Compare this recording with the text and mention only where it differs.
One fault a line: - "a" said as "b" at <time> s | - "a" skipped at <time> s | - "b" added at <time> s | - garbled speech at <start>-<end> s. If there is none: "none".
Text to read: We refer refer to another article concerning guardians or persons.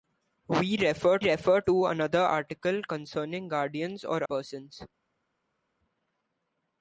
none